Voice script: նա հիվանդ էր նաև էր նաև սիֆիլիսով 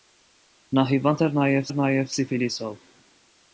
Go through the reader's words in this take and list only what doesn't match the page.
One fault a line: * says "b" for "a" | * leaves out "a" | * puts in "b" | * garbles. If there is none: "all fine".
all fine